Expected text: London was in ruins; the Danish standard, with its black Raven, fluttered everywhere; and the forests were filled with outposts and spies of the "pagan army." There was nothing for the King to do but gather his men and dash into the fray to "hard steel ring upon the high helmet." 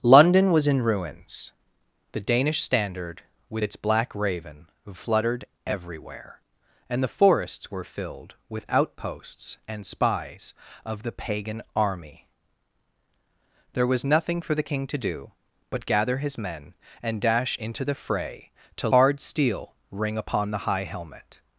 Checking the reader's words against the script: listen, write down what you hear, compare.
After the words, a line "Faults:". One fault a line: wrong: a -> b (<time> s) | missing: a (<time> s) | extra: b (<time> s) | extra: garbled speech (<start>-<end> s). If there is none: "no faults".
London was in ruins; the Danish standard, with its black Raven, fluttered everywhere; and the forests were filled with outposts and spies of the "pagan army." There was nothing for the King to do but gather his men and dash into the fray to "hard steel ring upon the high helmet."
Faults:
no faults